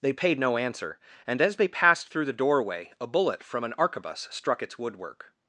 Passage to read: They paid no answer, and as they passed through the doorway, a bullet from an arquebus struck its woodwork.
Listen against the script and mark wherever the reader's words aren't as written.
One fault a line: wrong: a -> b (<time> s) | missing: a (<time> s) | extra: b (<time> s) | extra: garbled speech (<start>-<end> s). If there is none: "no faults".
no faults